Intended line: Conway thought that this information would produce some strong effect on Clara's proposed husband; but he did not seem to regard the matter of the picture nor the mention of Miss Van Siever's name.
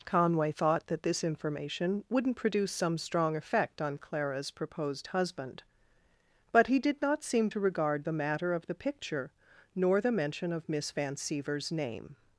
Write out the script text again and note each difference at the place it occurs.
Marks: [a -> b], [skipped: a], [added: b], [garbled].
Conway thought that this information [would -> wouldn't] produce some strong effect on Clara's proposed husband; but he did not seem to regard the matter of the picture nor the mention of Miss Van Siever's name.